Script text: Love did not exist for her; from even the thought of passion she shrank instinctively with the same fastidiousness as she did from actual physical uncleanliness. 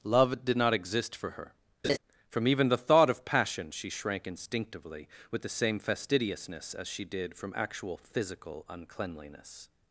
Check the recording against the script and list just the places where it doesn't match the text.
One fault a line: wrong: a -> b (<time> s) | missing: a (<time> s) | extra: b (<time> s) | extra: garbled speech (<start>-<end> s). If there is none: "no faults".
no faults